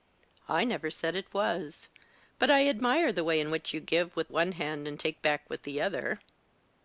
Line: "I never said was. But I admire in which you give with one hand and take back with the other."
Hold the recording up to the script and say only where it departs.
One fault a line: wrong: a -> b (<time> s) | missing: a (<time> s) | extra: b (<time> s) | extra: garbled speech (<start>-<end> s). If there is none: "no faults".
extra: it (1.1 s)
extra: the way (3.1 s)